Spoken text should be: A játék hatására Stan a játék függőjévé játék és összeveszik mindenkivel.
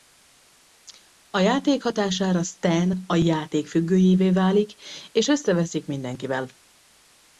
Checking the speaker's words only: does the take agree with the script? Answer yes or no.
no